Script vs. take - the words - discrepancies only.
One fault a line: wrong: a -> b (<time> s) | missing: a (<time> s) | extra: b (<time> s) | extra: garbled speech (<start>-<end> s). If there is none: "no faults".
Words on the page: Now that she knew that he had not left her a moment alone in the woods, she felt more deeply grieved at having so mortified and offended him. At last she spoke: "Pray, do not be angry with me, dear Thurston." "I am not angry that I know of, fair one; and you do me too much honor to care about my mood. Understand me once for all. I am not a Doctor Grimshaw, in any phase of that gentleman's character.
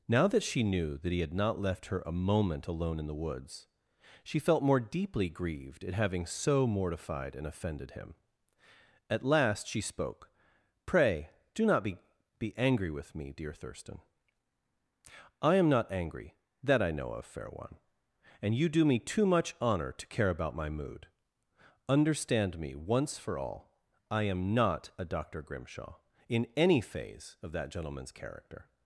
extra: be (12.4 s)